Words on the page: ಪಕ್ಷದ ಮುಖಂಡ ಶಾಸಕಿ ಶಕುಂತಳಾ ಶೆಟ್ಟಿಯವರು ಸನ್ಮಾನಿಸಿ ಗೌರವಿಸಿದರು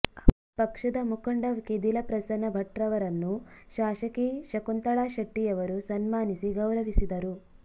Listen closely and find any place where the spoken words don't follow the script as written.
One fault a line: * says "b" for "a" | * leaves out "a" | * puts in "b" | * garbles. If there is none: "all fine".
* puts in "ಕೆದಿಲ ಪ್ರಸನ್ನ ಭಟ್ರವರನ್ನು"